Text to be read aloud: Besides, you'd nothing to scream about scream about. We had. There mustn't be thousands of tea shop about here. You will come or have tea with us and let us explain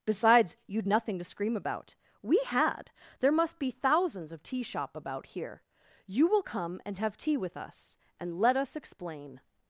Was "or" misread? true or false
true